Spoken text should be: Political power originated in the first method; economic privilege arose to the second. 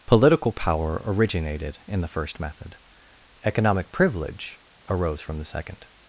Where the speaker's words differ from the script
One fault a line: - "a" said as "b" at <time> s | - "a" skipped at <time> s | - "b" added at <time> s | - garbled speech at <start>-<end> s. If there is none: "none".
- "to" said as "from" at 5.2 s